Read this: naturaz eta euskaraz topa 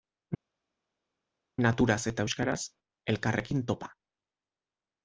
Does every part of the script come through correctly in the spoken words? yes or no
no